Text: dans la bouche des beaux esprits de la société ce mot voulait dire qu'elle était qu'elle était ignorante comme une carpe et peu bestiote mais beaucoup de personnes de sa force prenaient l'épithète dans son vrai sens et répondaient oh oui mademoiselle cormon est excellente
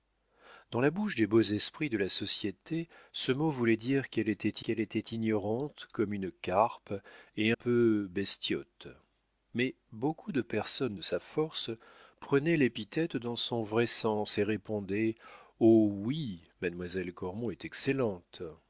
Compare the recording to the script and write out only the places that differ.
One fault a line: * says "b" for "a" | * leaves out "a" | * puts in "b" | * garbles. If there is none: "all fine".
all fine